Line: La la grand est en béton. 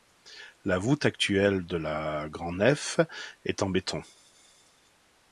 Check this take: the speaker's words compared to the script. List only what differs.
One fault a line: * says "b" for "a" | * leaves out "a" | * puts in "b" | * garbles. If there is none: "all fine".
* puts in "voûte actuelle de"
* puts in "nef"